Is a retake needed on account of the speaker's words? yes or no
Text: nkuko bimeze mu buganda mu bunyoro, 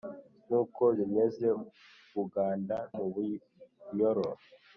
no